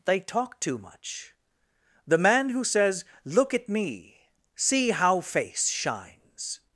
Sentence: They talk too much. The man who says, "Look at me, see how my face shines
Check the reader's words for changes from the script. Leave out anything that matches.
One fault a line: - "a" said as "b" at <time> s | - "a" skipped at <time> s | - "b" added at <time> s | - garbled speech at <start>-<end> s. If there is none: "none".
- "my" skipped at 5.2 s